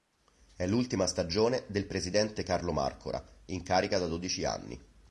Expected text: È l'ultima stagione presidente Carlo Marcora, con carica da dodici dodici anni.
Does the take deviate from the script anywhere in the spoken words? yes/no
yes